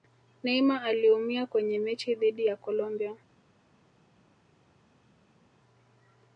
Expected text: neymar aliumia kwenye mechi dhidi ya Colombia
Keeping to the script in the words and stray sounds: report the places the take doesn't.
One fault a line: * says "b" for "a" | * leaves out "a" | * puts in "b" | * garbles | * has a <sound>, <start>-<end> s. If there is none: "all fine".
all fine